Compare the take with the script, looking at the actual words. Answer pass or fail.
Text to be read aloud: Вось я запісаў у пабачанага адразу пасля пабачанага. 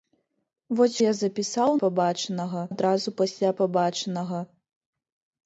pass